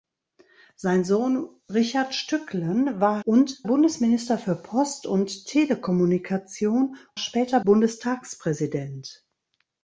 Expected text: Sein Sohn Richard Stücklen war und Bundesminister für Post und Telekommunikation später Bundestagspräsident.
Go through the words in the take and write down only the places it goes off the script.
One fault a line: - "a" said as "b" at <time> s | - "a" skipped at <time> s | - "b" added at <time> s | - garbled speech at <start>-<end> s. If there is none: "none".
none